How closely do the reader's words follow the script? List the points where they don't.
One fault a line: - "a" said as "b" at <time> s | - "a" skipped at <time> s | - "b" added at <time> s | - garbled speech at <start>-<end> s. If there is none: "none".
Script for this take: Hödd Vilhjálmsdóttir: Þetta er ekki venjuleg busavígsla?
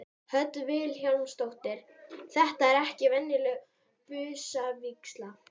none